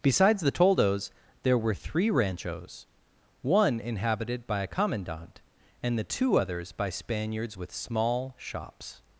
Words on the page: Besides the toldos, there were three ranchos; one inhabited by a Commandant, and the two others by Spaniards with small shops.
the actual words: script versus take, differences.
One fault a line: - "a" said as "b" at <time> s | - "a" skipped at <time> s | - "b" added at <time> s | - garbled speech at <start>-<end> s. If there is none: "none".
none